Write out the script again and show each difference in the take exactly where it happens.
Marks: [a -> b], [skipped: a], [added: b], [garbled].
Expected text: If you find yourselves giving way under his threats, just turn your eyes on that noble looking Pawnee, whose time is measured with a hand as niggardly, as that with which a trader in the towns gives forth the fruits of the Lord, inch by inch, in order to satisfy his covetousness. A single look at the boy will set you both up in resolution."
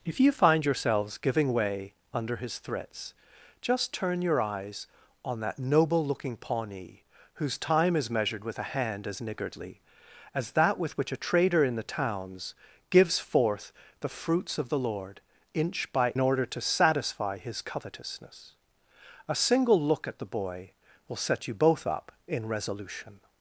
If you find yourselves giving way under his threats, just turn your eyes on that noble looking Pawnee, whose time is measured with a hand as niggardly, as that with which a trader in the towns gives forth the fruits of the Lord, inch by [skipped: inch, in] order to satisfy his covetousness. A single look at the boy will set you both up in resolution."